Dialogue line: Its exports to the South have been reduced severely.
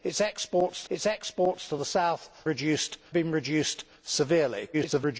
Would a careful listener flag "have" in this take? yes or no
yes